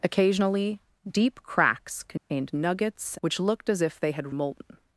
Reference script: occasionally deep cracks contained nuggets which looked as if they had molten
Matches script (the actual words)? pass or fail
pass